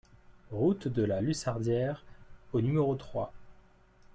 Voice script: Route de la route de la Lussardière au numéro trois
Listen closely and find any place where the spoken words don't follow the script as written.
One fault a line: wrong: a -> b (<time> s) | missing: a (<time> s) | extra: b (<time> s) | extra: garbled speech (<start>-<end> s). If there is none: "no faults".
missing: route de la (1.2 s)